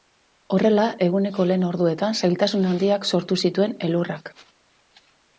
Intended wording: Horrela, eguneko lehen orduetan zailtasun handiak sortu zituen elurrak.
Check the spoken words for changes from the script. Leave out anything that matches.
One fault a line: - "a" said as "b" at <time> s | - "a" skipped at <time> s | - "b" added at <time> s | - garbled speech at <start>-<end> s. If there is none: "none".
none